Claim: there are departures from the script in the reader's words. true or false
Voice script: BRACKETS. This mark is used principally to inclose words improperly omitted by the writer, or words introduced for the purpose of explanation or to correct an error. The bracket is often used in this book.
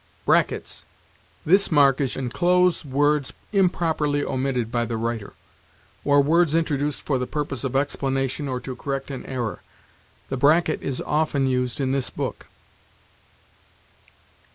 true